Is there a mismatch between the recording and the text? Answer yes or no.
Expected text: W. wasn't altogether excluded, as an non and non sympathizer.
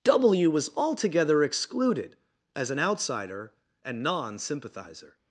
yes